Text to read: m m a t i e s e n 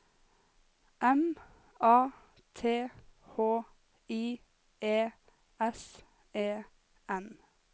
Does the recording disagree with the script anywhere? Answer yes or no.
yes